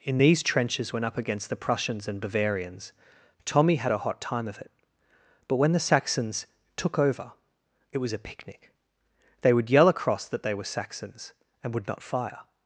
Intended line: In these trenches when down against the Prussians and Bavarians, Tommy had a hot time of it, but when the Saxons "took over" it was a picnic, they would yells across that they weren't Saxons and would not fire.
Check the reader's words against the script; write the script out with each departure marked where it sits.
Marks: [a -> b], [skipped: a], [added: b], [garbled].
In these trenches when [down -> up] against the Prussians and Bavarians, Tommy had a hot time of it, but when the Saxons "took over" it was a picnic, they would [yells -> yell] across that they [weren't -> were] Saxons and would not fire.